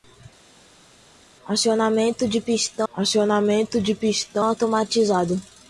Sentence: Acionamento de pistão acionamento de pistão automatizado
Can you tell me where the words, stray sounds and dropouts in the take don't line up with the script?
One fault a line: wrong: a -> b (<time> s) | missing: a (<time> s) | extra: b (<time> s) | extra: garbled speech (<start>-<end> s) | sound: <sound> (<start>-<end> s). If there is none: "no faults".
no faults